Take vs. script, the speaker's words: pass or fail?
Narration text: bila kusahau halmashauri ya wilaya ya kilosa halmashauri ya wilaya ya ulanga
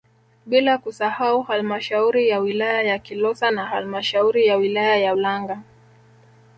fail